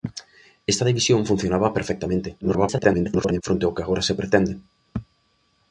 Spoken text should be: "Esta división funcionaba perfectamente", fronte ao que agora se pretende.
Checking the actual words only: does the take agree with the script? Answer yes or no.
no